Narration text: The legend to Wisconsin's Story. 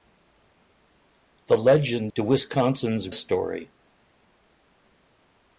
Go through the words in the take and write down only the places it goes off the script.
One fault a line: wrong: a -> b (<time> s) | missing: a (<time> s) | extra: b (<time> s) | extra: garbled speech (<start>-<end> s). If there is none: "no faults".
no faults